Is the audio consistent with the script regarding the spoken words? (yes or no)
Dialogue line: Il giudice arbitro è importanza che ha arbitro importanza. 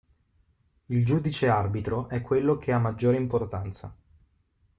no